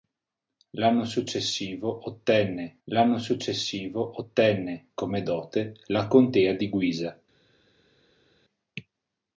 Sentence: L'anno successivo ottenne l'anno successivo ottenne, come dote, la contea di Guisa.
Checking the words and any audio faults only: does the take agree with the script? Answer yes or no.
yes